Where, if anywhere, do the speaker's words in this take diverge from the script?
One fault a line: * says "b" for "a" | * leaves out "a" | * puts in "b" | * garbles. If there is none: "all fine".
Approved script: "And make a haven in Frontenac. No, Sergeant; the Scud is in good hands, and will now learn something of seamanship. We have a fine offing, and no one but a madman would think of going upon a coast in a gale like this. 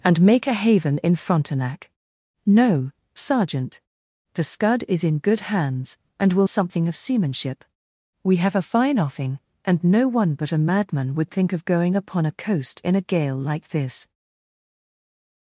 * leaves out "now learn"